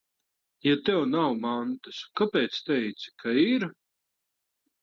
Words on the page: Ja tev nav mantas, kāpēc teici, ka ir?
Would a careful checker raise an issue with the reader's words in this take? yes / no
no